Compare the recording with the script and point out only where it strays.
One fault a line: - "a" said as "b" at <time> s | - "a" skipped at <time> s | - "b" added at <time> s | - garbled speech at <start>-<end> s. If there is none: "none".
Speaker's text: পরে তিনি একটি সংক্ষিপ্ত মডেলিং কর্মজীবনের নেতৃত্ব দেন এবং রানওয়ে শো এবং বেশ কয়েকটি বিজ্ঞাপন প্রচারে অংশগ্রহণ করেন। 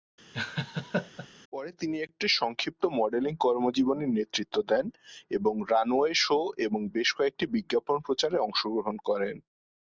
none